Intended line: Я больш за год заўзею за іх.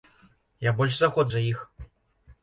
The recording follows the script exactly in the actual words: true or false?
false